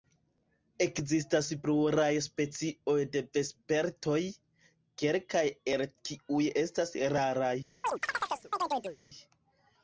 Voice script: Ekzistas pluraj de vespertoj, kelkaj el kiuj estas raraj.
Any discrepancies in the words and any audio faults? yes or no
yes